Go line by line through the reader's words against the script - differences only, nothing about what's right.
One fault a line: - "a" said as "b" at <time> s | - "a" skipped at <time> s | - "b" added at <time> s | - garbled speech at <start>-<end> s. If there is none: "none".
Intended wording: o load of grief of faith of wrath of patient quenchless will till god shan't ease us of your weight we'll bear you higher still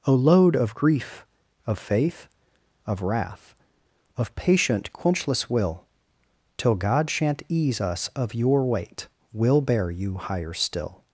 none